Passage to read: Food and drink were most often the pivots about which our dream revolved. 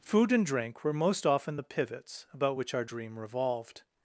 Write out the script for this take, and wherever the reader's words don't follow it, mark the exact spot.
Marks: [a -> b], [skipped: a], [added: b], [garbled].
Food and drink were most often the pivots about which our dream revolved.